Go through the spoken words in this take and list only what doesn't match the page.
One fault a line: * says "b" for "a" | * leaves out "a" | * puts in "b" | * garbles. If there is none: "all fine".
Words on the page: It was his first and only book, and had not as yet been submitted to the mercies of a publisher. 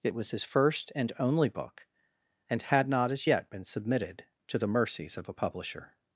all fine